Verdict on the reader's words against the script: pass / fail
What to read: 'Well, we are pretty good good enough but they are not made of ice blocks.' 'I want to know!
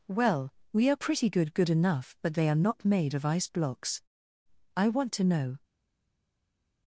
pass